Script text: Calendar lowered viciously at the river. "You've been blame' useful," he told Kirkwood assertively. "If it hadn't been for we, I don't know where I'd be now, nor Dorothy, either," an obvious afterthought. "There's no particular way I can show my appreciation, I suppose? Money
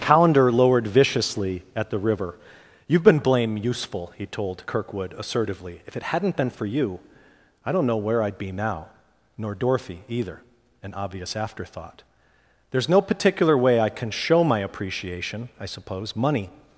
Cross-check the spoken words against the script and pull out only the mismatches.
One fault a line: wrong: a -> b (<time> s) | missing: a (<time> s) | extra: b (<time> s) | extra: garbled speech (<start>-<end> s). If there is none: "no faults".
wrong: we -> you (6.7 s)